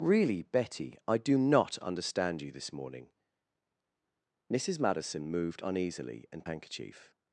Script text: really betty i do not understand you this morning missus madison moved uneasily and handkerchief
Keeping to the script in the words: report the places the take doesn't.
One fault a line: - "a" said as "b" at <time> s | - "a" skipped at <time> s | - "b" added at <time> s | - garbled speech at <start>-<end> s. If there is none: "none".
none